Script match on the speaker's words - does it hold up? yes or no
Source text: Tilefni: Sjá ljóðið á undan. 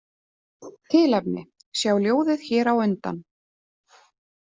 no